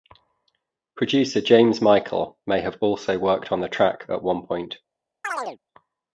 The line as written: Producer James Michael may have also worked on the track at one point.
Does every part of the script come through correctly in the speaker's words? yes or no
yes